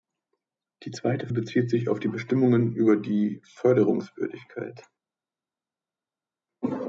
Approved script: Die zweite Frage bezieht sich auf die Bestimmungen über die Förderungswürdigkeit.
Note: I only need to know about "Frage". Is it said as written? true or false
false